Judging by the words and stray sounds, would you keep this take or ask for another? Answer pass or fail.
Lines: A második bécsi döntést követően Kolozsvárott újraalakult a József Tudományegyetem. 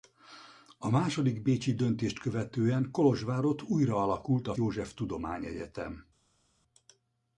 pass